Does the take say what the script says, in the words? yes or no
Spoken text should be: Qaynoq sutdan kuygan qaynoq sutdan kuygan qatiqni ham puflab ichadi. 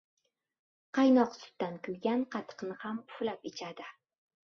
no